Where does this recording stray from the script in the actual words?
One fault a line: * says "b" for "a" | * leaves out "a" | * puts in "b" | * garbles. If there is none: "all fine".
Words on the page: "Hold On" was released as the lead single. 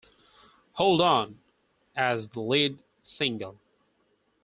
* leaves out "was released"